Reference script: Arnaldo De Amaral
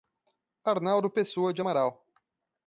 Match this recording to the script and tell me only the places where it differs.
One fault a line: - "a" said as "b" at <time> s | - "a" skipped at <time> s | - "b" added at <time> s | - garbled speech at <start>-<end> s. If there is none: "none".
- "Pessoa" added at 1.1 s